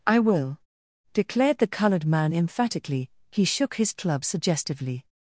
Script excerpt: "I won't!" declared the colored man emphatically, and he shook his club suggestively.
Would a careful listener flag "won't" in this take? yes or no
yes